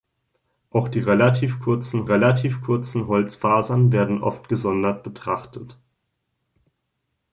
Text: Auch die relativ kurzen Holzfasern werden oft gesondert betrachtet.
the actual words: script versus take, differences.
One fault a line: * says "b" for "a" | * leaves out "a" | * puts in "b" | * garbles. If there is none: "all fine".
* puts in "relativ kurzen"